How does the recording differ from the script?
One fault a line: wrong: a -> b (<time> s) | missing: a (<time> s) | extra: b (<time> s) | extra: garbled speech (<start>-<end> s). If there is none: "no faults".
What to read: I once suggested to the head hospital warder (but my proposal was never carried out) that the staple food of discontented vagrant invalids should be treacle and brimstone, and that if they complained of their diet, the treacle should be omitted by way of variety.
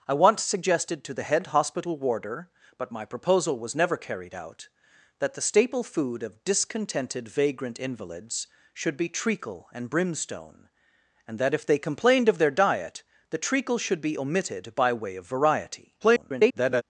extra: garbled speech (16.0-16.8 s)